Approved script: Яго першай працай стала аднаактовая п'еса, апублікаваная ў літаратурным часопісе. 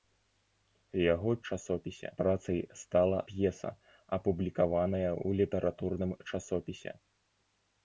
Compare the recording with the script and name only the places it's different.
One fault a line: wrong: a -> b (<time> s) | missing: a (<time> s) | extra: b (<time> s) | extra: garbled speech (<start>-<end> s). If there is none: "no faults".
wrong: першай -> часопісе (1.5 s)
missing: аднаактовая (3.2 s)